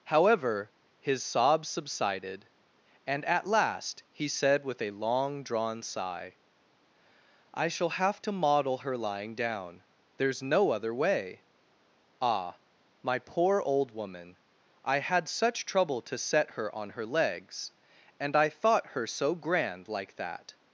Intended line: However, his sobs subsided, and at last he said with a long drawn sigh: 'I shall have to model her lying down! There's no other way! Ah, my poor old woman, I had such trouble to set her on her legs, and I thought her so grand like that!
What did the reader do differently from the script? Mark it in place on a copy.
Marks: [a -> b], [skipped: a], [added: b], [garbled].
However, his sobs subsided, and at last he said with a long drawn sigh: 'I shall have to model her lying down! There's no other way! Ah, my poor old woman, I had such trouble to set her on her legs, and I thought her so grand like that!